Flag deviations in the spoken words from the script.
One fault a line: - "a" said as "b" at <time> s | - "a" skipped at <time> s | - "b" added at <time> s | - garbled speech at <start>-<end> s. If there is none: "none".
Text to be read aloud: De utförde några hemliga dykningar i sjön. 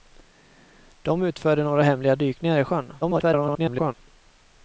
- garbled speech at 3.0-3.9 s